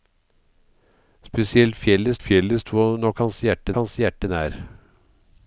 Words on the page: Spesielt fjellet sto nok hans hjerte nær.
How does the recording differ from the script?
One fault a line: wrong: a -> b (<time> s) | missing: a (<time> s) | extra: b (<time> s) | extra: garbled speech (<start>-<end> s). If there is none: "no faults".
extra: fjellet (2.3 s)
extra: hans hjerte (3.8 s)